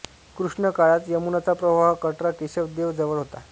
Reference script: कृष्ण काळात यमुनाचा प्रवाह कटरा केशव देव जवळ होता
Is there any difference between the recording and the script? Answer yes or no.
no